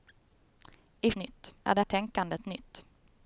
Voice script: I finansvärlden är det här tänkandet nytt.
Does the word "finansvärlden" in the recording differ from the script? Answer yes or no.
yes